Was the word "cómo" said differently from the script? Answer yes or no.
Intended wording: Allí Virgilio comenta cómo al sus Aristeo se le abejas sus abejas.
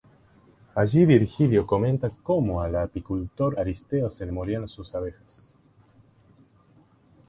no